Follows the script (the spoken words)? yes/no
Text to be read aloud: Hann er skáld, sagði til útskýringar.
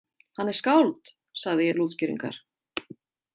yes